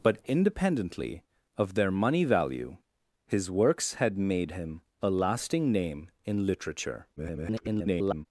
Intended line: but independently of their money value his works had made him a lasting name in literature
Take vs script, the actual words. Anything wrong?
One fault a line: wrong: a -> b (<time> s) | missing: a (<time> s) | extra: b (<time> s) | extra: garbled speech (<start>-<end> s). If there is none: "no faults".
extra: garbled speech (7.2-8.3 s)